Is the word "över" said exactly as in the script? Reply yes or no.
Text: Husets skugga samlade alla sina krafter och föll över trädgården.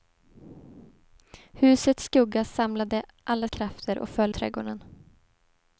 no